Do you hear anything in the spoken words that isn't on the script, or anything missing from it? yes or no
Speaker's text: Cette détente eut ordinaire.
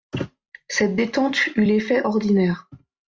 yes